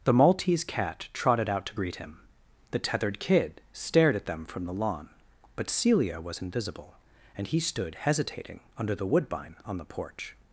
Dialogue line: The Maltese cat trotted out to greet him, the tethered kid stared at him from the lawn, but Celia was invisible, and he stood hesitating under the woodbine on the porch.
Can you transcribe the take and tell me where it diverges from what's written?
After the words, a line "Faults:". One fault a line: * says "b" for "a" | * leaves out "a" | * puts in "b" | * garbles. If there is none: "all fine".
The Maltese cat trotted out to greet him, the tethered kid stared at them from the lawn, but Celia was invisible, and he stood hesitating under the woodbine on the porch.
Faults:
* says "them" for "him"